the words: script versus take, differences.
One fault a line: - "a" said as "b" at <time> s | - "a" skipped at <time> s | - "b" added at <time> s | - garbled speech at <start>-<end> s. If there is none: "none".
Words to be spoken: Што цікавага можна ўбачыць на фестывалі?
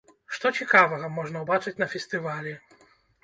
none